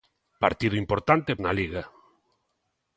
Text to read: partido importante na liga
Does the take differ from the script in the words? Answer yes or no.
no